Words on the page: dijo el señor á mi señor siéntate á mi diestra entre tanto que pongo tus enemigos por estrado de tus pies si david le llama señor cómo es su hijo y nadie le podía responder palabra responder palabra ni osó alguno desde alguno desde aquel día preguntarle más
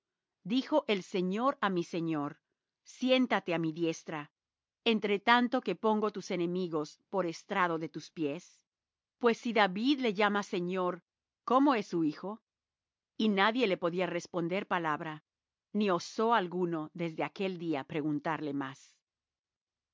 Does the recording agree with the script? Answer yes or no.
no